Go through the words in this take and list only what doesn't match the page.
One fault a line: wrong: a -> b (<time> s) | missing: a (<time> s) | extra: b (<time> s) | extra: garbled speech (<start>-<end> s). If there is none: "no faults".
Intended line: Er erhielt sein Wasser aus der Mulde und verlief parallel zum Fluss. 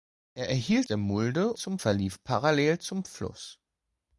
missing: sein Wasser aus (0.9 s)
wrong: und -> zum (1.5 s)